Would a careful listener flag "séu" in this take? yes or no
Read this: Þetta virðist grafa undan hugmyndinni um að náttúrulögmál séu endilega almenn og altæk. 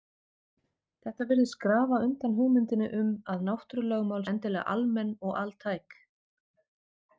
yes